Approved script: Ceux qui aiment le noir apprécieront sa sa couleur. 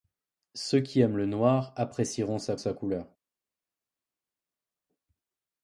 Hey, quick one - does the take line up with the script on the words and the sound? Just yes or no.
yes